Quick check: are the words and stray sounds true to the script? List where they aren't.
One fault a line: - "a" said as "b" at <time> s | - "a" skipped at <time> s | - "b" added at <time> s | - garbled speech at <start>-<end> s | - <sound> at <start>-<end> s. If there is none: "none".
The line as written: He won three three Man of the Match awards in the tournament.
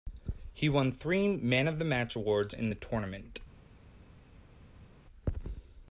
- "three" skipped at 1.4 s